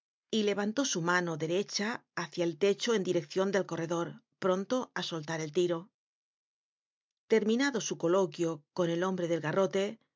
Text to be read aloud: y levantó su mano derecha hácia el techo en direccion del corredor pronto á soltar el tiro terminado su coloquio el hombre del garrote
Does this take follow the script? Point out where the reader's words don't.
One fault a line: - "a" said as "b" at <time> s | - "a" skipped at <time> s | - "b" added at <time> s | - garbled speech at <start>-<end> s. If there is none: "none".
- "con" added at 8.7 s